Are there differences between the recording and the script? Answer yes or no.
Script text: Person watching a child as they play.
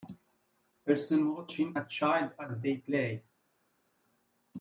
no